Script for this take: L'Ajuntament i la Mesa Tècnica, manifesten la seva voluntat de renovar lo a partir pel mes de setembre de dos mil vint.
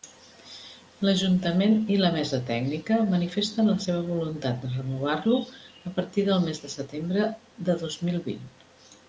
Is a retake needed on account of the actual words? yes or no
yes